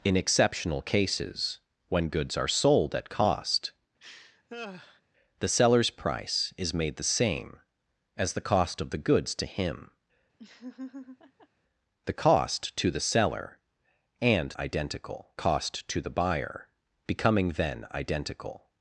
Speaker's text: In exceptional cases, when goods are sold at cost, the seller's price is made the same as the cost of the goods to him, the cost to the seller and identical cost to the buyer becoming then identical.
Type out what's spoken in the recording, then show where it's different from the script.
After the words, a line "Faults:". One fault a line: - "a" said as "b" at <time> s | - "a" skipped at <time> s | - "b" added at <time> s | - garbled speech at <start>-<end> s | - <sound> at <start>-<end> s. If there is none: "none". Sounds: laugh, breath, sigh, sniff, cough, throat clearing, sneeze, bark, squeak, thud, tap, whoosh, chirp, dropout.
In exceptional cases, when goods are sold at cost, the seller's price is made the same as the cost of the goods to him, the cost to the seller and identical cost to the buyer becoming then identical.
Faults:
- laugh at 4.0-5.0 s
- laugh at 10.4-11.5 s